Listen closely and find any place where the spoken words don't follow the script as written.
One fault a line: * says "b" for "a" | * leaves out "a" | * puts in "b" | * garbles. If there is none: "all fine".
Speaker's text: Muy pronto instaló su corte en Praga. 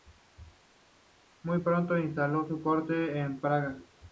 all fine